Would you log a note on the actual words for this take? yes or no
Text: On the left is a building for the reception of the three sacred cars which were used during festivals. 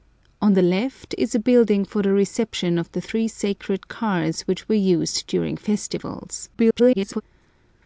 yes